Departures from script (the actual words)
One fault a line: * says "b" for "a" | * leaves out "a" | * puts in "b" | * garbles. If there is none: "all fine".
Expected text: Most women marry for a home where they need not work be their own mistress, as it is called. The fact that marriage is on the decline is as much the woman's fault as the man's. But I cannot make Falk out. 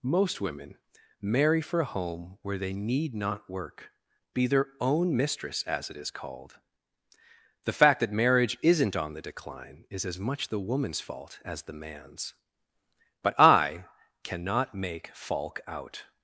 * says "isn't" for "is"